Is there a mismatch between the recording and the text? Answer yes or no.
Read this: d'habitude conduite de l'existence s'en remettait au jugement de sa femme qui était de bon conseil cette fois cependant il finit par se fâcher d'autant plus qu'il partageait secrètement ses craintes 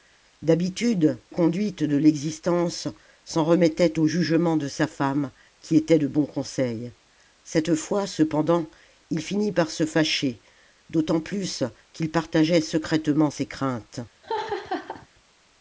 no